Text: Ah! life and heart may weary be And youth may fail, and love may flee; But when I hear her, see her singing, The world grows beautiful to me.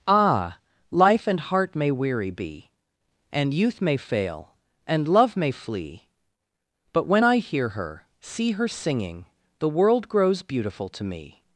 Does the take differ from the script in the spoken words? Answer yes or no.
no